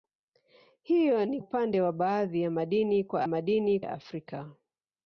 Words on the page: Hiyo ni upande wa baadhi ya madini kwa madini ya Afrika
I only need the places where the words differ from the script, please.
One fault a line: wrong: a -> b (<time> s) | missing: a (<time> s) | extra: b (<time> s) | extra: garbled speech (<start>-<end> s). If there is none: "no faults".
no faults